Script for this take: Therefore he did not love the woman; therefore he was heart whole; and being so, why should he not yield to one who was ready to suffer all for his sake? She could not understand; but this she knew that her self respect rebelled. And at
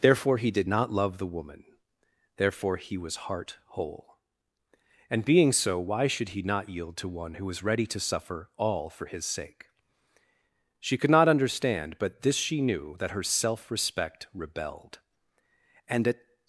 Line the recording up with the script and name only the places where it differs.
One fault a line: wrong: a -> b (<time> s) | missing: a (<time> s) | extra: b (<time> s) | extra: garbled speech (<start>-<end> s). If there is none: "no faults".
no faults